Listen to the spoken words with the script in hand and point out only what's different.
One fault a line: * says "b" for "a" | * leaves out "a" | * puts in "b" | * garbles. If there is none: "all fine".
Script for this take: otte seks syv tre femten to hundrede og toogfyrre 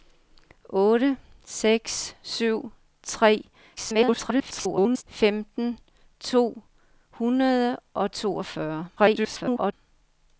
* garbles
* garbles